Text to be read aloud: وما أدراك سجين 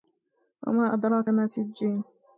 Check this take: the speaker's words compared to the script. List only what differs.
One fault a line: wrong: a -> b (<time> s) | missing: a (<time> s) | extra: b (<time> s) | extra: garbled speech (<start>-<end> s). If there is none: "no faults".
extra: ما (1.3 s)